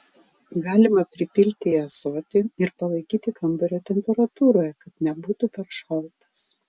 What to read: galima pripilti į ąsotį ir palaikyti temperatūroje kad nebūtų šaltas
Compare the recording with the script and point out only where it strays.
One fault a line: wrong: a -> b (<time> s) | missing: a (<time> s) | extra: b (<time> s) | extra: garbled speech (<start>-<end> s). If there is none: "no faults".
extra: kambario (3.4 s)
extra: per (5.6 s)